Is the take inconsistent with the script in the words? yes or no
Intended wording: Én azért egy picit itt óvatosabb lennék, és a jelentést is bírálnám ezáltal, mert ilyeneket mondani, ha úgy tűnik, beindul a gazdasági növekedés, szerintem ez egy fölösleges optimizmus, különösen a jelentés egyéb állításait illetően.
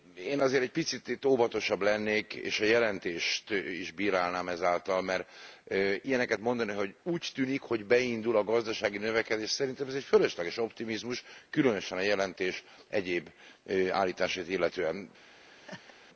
yes